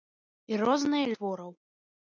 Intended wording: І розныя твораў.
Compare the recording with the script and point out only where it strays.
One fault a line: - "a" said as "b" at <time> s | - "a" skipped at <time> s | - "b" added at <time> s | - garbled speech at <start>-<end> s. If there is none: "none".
none